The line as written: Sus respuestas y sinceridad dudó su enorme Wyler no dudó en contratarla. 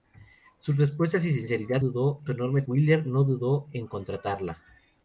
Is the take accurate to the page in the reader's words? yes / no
yes